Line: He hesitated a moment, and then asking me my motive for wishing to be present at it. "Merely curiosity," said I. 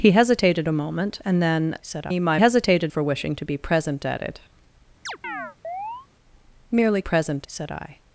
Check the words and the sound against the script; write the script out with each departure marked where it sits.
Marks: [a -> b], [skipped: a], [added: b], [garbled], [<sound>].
He hesitated a moment, and then [asking -> said] me my [motive -> hesitated] for wishing to be present at it. [chirp] "Merely [curiosity," -> present] said I.